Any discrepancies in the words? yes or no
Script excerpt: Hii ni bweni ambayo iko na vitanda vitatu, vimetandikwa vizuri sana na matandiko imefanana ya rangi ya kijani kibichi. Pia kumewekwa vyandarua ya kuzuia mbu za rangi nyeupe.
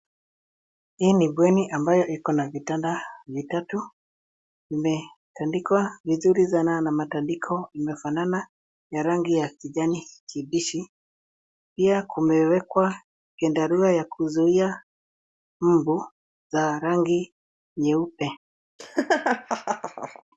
no